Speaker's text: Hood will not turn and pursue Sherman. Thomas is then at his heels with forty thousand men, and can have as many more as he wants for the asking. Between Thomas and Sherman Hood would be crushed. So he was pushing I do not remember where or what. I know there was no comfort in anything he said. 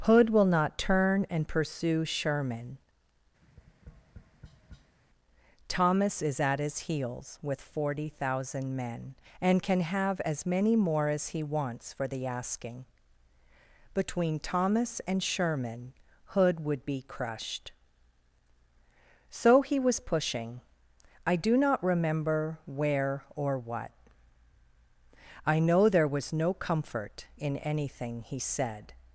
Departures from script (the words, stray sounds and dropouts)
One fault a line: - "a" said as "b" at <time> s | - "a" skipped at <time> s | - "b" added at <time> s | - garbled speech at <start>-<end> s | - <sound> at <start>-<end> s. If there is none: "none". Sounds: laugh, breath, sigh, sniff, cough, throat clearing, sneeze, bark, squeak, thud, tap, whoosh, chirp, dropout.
- tap at 3.4-5.0 s
- "then" skipped at 6.4 s